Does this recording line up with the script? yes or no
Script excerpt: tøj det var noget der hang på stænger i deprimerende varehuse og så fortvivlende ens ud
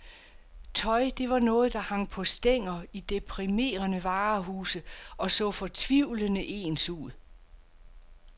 yes